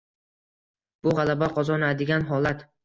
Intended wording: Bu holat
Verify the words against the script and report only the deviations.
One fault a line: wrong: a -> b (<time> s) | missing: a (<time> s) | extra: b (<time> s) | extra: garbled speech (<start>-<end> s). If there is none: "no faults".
extra: g'alaba qozonadigan (1.2 s)